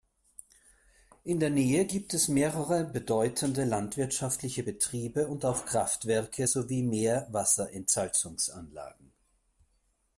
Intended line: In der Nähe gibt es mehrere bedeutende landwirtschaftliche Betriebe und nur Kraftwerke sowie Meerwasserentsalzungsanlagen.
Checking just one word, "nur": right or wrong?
wrong